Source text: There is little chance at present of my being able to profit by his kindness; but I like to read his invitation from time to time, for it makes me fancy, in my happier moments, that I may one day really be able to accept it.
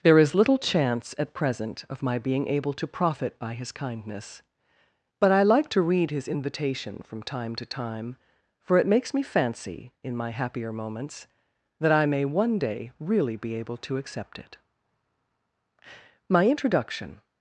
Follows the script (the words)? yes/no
no